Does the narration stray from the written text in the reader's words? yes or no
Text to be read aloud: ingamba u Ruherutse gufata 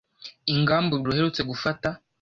no